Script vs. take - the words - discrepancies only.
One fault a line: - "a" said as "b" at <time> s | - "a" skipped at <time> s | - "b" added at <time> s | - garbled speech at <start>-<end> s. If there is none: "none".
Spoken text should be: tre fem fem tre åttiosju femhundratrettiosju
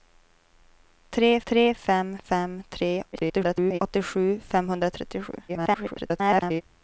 - "tre" added at 1.5 s
- garbled speech at 3.1-3.8 s
- garbled speech at 5.5-6.6 s